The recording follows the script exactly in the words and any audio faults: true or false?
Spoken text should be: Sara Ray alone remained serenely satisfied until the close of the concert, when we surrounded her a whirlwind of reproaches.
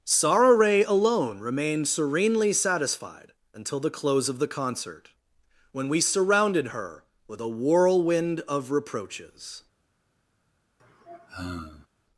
false